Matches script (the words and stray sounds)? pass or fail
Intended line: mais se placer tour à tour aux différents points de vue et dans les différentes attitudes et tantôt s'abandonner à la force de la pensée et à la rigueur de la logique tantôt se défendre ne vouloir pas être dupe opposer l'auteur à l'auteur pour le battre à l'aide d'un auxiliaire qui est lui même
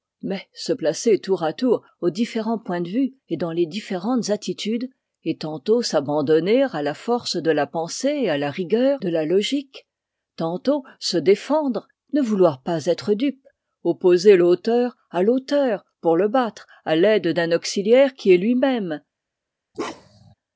fail